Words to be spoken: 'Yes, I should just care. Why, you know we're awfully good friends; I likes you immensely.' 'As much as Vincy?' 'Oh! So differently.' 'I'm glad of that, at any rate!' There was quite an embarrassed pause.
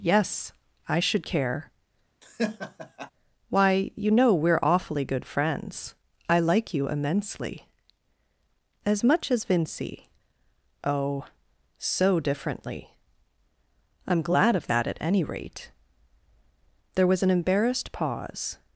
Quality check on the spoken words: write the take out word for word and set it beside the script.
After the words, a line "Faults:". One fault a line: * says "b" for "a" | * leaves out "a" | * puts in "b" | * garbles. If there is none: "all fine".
'Yes, I should care. Why, you know we're awfully good friends; I like you immensely.' 'As much as Vincy?' 'Oh! So differently.' 'I'm glad of that, at any rate!' There was an embarrassed pause.
Faults:
* leaves out "just"
* says "like" for "likes"
* leaves out "quite"